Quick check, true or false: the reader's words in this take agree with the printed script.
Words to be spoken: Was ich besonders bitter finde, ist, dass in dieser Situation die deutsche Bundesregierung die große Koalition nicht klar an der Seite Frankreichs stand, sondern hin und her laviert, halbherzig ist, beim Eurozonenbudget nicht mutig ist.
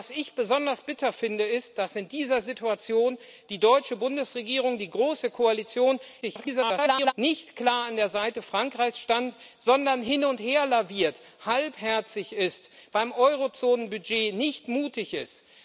false